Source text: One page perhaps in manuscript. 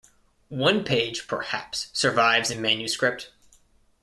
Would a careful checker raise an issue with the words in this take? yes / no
yes